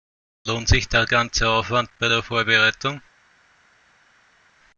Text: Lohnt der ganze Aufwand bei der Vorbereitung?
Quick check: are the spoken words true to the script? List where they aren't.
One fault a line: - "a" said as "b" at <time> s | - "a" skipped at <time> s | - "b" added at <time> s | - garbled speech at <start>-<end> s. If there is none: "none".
- "sich" added at 0.7 s